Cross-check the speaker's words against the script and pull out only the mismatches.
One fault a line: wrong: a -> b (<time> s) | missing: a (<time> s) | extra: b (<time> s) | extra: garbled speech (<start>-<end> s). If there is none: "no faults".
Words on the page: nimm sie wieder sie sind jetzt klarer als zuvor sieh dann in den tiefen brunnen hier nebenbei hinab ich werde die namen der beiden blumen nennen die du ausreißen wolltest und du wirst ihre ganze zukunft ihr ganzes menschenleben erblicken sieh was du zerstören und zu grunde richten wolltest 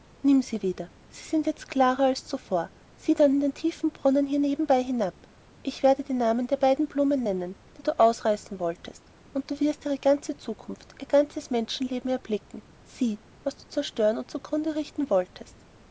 no faults